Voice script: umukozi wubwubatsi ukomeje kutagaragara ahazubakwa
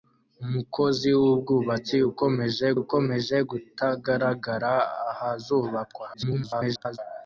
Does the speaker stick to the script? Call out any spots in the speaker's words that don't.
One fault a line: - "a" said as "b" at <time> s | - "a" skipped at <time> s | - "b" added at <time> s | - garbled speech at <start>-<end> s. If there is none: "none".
- "ukomeje" added at 2.8 s
- garbled speech at 6.1-7.0 s